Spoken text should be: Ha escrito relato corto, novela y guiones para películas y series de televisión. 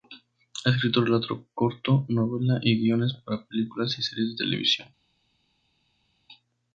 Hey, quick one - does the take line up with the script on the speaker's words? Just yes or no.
yes